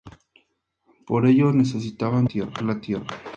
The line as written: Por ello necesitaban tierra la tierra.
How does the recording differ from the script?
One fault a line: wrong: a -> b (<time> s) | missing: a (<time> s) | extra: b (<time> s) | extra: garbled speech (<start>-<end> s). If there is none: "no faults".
no faults